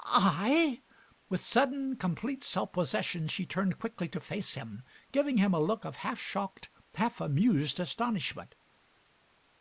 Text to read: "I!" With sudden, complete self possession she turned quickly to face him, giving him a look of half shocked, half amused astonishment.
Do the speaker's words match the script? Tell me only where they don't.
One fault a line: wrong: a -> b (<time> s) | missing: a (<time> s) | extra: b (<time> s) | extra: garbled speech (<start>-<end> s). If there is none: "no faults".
no faults